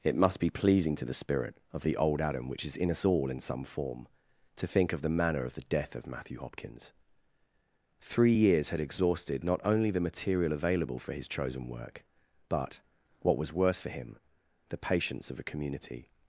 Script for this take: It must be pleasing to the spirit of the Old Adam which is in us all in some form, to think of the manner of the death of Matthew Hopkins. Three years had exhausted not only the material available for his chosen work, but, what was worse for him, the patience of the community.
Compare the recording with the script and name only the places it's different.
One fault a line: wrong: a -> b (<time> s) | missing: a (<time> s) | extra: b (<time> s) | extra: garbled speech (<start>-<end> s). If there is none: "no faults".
wrong: the -> a (15.4 s)